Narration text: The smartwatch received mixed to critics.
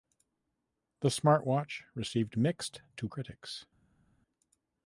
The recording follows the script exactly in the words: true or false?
true